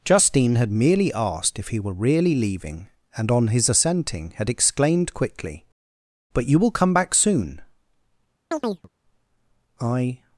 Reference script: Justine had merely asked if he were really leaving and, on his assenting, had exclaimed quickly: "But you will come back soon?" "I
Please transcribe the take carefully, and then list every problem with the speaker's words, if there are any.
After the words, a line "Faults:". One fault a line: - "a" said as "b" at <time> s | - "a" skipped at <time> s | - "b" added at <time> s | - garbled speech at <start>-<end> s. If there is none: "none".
Justine had merely asked if he were really leaving and, on his assenting, had exclaimed quickly: "But you will come back soon?" "I
Faults:
none